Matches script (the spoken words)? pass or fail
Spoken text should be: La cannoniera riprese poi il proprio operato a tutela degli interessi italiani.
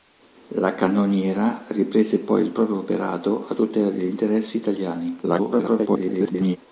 fail